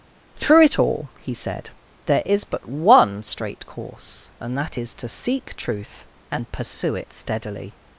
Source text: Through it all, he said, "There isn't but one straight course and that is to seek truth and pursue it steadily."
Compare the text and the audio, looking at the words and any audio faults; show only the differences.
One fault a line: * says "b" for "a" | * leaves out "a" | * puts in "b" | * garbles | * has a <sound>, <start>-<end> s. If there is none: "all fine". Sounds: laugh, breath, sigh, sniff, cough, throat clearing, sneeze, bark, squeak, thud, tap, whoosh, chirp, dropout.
* says "is" for "isn't"